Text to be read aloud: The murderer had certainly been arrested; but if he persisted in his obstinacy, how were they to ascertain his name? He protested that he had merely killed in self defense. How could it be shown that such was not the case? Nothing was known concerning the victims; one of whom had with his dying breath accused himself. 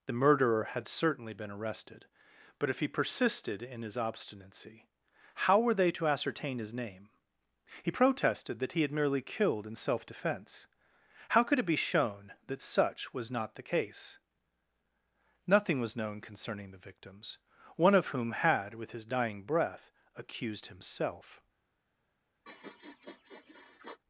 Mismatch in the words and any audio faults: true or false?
true